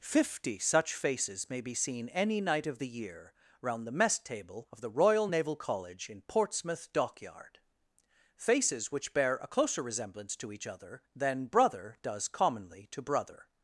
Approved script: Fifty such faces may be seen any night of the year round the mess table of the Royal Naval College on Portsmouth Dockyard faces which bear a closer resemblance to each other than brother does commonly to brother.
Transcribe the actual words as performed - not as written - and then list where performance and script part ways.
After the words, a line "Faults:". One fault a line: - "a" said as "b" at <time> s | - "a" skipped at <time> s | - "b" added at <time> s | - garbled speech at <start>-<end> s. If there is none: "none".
Fifty such faces may be seen any night of the year round the mess table of the Royal Naval College in Portsmouth Dockyard faces which bear a closer resemblance to each other than brother does commonly to brother.
Faults:
- "on" said as "in" at 6.1 s